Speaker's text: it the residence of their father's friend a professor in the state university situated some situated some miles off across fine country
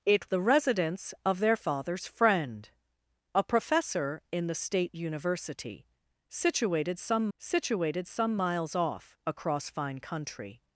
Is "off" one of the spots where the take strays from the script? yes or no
no